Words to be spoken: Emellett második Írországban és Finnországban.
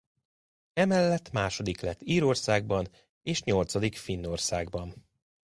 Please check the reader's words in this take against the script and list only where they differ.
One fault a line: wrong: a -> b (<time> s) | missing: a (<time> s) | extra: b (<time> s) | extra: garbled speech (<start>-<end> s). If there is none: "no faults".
extra: lett (1.8 s)
extra: nyolcadik (3.4 s)